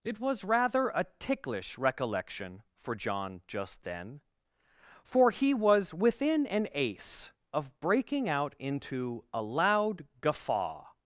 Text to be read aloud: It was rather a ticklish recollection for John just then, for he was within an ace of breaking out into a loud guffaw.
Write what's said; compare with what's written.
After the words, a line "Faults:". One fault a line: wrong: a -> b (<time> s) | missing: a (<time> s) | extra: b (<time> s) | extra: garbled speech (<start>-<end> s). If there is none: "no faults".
It was rather a ticklish recollection for John just then, for he was within an ace of breaking out into a loud guffaw.
Faults:
no faults